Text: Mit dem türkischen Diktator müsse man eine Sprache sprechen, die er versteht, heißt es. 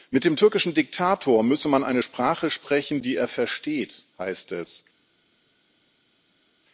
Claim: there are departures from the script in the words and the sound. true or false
false